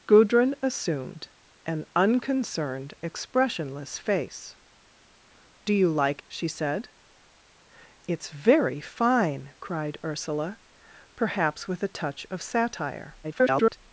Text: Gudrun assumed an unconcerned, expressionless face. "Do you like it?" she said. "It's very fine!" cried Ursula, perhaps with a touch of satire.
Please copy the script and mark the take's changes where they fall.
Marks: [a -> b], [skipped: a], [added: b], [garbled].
Gudrun assumed an unconcerned, expressionless face. "Do you like [skipped: it?"] she said. "It's very fine!" cried Ursula, perhaps with a touch of satire. [garbled]